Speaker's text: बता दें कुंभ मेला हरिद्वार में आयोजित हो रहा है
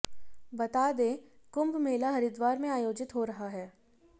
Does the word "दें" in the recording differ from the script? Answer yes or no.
no